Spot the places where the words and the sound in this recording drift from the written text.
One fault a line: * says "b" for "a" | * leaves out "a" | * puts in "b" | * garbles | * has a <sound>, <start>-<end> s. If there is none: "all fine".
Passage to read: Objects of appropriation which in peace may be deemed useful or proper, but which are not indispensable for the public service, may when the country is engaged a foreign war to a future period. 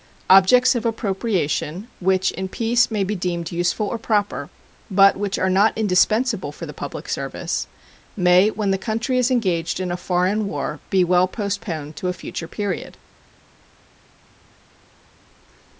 * puts in "in"
* puts in "be well postponed"